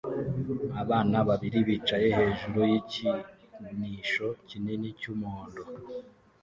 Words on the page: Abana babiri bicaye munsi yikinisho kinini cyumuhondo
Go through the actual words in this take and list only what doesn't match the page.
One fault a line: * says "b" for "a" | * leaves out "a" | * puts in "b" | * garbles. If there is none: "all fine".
* says "hejuru" for "munsi"